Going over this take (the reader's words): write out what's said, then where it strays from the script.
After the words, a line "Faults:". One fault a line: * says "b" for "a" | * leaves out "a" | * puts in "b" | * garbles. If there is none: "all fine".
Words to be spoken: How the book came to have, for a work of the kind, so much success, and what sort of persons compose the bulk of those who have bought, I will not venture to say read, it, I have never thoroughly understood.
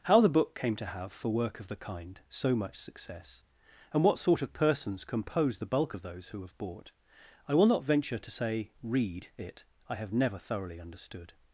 How the book came to have, for work of the kind, so much success, and what sort of persons compose the bulk of those who have bought, I will not venture to say read, it, I have never thoroughly understood.
Faults:
* leaves out "a"